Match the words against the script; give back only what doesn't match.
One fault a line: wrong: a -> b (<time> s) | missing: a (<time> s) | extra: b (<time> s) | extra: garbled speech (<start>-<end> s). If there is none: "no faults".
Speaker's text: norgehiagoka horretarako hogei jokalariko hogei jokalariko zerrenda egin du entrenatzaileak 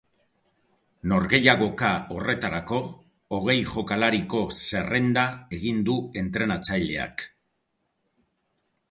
missing: hogei jokalariko (4.4 s)